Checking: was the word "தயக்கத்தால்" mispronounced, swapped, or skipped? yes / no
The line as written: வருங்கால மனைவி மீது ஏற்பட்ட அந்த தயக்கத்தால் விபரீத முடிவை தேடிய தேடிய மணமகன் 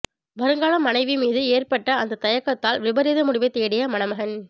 no